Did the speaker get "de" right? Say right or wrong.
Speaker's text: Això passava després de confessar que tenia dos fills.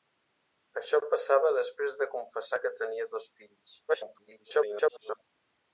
right